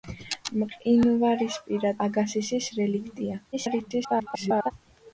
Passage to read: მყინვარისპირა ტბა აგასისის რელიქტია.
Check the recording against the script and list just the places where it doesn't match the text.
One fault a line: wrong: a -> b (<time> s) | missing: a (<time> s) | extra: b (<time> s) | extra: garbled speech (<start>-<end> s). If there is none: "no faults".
missing: ტბა (1.9 s)
extra: garbled speech (3.5-4.7 s)